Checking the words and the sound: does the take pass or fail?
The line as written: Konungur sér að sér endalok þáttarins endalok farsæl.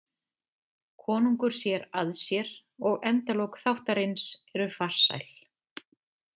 fail